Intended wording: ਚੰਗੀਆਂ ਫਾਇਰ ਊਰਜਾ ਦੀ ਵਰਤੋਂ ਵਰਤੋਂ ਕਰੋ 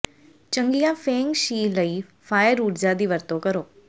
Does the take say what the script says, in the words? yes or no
no